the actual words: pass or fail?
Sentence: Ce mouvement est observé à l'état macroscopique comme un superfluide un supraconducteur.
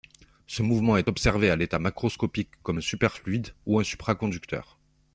fail